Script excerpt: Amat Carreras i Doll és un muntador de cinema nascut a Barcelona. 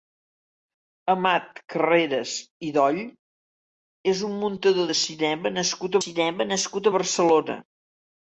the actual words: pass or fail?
fail